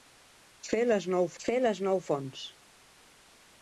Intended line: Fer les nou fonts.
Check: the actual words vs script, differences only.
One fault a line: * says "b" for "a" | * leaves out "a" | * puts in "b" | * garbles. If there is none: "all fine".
* puts in "fer les nou"